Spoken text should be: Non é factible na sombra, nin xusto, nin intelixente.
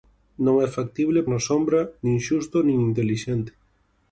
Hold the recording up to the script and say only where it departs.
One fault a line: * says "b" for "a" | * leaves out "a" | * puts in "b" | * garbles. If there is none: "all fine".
all fine